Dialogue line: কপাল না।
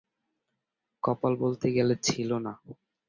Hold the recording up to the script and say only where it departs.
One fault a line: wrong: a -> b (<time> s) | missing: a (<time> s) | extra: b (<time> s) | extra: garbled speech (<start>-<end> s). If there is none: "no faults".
extra: বলতে গেলে ছিল (1.4 s)